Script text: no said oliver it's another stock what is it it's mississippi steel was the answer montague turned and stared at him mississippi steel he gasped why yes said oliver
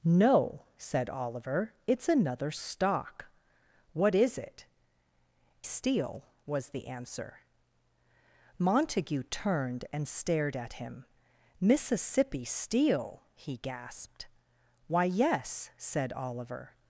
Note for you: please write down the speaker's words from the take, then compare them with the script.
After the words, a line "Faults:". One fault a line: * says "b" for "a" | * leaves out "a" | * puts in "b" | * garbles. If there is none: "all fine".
no said oliver it's another stock what is it steel was the answer montague turned and stared at him mississippi steel he gasped why yes said oliver
Faults:
* leaves out "it's mississippi"